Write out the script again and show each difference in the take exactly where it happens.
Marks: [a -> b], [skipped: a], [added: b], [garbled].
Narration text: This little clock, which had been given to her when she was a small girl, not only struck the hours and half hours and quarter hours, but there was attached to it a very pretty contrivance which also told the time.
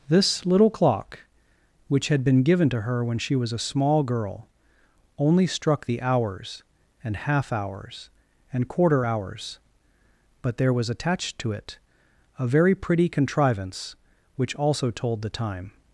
This little clock, which had been given to her when she was a small girl, [skipped: not] only struck the hours and half hours and quarter hours, but there was attached to it a very pretty contrivance which also told the time.